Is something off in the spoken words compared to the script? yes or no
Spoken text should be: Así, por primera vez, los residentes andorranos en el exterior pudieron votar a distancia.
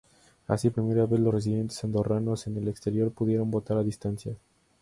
yes